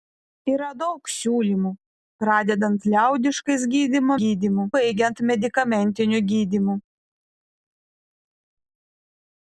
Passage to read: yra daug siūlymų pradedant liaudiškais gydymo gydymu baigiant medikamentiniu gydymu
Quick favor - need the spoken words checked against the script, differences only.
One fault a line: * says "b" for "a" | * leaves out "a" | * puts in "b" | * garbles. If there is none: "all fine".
all fine